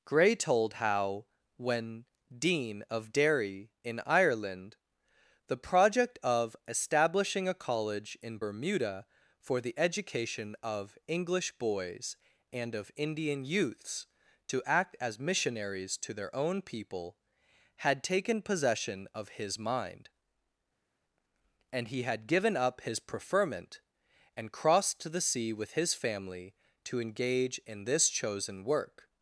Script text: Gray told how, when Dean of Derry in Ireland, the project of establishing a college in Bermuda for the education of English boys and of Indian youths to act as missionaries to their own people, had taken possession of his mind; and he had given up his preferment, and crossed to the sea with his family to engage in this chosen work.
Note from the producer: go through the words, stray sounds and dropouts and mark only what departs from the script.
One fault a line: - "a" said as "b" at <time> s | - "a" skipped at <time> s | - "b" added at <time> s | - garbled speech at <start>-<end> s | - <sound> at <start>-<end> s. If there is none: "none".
none